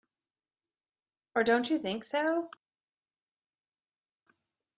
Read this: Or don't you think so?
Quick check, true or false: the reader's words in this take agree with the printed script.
true